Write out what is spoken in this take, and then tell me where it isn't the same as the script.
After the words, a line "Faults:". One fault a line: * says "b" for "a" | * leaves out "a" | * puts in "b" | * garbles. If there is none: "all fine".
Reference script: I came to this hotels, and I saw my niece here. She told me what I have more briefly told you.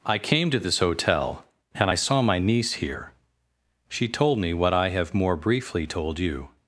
I came to this hotel, and I saw my niece here. She told me what I have more briefly told you.
Faults:
* says "hotel" for "hotels"